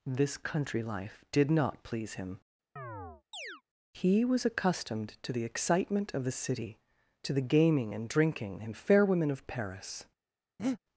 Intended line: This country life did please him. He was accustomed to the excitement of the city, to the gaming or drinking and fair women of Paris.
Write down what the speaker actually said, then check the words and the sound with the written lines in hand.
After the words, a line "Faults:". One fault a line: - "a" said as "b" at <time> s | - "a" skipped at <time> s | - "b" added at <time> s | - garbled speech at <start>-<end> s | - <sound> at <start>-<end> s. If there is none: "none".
This country life did not please him. He was accustomed to the excitement of the city, to the gaming and drinking and fair women of Paris.
Faults:
- "not" added at 1.5 s
- chirp at 2.8-3.6 s
- "or" said as "and" at 7.9 s
- breath at 10.6-10.8 s